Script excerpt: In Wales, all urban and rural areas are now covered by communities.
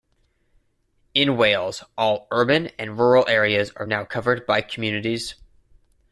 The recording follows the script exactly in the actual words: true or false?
true